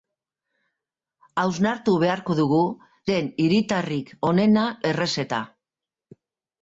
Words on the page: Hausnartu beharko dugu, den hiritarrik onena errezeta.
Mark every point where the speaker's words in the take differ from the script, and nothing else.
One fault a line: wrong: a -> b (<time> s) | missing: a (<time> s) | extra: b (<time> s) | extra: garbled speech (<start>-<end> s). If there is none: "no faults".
no faults